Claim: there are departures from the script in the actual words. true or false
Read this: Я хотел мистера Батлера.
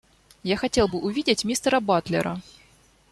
true